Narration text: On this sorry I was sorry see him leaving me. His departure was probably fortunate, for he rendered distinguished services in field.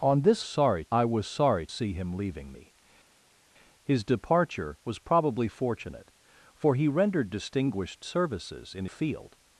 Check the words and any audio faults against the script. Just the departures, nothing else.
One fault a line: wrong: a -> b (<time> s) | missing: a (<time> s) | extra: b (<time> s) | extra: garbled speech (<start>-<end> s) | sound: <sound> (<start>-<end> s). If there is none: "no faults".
no faults